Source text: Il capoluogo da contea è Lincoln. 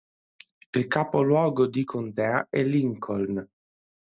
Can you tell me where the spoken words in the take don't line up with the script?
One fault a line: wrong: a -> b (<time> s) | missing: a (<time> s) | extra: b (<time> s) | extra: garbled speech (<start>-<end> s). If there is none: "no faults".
wrong: da -> di (1.7 s)